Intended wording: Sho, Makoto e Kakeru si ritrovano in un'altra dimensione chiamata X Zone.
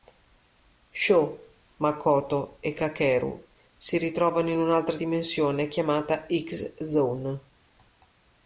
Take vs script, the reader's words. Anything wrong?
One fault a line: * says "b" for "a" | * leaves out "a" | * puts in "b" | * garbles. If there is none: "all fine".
all fine